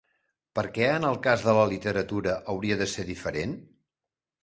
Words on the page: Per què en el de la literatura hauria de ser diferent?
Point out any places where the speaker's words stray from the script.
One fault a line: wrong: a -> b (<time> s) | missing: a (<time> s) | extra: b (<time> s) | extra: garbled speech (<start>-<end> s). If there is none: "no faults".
extra: cas (1.3 s)